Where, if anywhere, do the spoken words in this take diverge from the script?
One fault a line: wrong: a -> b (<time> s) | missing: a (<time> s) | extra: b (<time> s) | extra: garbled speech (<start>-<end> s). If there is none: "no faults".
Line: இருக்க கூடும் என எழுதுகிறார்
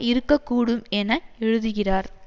no faults